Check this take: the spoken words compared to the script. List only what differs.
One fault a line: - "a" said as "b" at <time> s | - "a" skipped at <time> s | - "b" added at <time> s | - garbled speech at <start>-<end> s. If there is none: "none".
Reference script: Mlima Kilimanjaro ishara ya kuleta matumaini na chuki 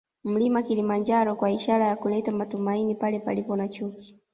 - "kwa" added at 1.3 s
- "pale palipo" added at 3.0 s